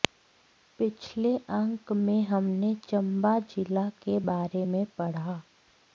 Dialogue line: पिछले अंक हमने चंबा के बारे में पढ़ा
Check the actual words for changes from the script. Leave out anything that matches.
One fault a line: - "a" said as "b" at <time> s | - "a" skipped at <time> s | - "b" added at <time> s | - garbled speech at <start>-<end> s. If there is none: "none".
- "में" added at 2.0 s
- "जिला" added at 3.5 s